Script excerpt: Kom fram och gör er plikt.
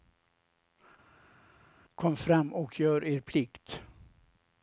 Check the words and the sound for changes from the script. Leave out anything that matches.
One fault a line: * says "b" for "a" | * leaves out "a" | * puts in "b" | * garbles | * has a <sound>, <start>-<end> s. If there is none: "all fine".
all fine